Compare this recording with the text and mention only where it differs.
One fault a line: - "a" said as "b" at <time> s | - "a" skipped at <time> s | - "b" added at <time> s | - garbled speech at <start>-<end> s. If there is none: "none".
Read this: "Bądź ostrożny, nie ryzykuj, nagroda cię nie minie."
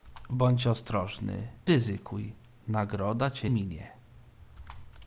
- "nie" skipped at 1.5 s
- "nie" skipped at 3.5 s